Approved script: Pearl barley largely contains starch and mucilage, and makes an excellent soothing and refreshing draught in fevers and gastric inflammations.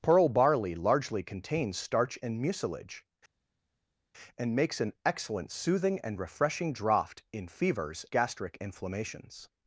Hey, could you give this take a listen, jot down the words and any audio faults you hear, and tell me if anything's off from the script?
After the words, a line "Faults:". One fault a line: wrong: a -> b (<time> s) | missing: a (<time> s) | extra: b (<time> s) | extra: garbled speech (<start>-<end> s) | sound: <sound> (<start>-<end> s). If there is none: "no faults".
Pearl barley largely contains starch and mucilage, and makes an excellent soothing and refreshing draught in fevers gastric inflammations.
Faults:
missing: and (8.1 s)